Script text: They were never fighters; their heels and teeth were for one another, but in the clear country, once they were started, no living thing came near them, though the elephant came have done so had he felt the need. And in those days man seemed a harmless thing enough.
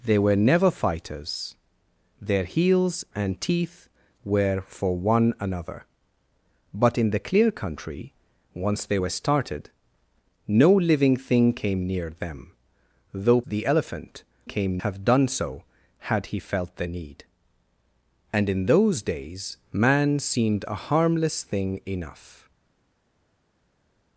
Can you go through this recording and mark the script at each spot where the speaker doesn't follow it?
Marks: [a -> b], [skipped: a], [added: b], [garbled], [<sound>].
They were never fighters; their heels and teeth were for one another, but in the clear country, once they were started, no living thing came near them, though the elephant came have done so had he felt the need. And in those days man seemed a harmless thing enough.